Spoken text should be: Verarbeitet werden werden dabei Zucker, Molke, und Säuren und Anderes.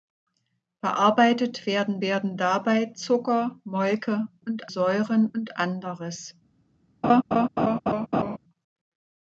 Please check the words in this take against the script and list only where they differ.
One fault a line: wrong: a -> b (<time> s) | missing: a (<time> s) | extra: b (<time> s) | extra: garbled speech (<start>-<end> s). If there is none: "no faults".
no faults